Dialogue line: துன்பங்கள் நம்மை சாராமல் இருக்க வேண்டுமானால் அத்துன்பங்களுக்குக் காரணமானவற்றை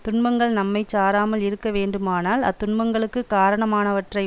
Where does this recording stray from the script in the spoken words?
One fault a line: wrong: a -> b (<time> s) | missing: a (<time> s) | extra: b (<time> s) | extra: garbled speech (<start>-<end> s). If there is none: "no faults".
no faults